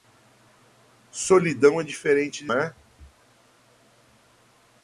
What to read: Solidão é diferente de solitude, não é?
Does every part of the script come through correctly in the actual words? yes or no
no